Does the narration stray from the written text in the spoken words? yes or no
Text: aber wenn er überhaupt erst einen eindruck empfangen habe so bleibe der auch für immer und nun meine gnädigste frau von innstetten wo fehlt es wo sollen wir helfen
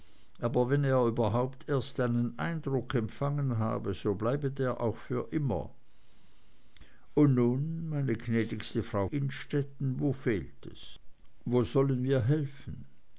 yes